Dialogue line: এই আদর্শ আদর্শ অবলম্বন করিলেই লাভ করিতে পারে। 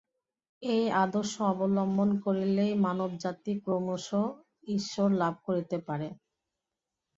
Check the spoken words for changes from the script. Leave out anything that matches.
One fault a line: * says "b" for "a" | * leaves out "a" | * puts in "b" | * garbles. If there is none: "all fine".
* leaves out "আদর্শ"
* puts in "মানবজাতি ক্রমশ ঈশ্বর"